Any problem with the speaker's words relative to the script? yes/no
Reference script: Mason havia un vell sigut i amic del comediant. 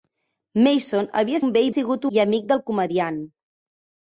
no